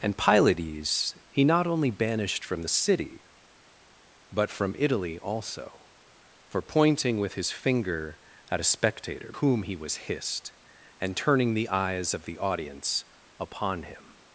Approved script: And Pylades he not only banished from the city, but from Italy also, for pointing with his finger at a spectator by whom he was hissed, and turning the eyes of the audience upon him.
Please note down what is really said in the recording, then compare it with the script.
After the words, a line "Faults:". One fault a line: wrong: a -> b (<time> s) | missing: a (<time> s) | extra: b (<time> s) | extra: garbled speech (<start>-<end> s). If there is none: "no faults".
And Pylades he not only banished from the city, but from Italy also, for pointing with his finger at a spectator whom he was hissed, and turning the eyes of the audience upon him.
Faults:
missing: by (9.3 s)